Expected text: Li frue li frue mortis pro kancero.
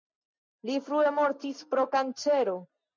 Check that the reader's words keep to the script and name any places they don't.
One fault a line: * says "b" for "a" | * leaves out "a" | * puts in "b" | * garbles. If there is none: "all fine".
* leaves out "li frue"